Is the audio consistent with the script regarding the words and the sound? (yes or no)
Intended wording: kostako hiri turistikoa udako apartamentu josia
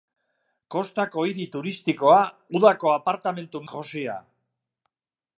yes